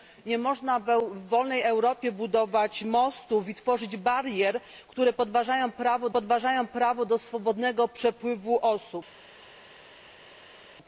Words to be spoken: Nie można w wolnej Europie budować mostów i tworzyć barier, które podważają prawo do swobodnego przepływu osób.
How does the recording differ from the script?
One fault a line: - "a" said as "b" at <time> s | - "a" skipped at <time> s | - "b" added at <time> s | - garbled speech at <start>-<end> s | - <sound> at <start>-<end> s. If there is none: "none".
- "podważają prawo" added at 6.1 s